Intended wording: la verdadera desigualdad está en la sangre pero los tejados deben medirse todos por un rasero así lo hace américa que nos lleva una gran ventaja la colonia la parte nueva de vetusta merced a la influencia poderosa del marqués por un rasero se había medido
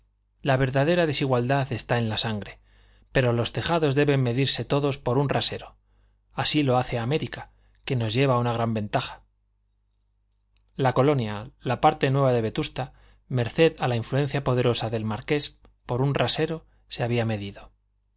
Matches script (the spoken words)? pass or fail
pass